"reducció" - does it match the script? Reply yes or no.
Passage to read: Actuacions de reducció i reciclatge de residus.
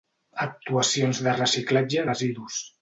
no